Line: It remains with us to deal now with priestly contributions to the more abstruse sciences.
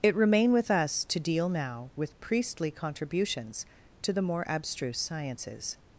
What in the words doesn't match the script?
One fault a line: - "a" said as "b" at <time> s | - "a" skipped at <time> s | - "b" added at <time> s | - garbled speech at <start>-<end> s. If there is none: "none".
- "remains" said as "remain" at 0.1 s